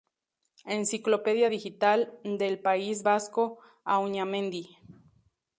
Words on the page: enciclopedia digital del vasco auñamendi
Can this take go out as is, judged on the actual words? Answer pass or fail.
fail